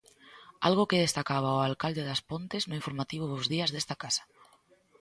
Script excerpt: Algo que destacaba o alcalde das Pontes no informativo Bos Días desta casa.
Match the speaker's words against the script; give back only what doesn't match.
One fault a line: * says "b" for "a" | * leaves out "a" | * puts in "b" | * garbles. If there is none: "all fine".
all fine